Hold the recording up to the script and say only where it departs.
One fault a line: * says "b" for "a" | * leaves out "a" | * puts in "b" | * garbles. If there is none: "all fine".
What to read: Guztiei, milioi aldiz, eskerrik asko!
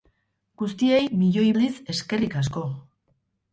all fine